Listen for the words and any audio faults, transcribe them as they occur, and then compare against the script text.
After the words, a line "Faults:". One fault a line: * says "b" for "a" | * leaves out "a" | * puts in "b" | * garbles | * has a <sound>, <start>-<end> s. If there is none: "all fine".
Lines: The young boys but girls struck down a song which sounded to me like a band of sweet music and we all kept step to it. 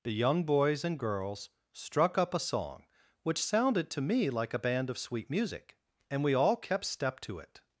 The young boys and girls struck up a song which sounded to me like a band of sweet music and we all kept step to it.
Faults:
* says "and" for "but"
* says "up" for "down"